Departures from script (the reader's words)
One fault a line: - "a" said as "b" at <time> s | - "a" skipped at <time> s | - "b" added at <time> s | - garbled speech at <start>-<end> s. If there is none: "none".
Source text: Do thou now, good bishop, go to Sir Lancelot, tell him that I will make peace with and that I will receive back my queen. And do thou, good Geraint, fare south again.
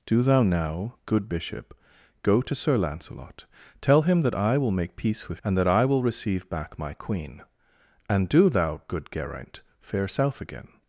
none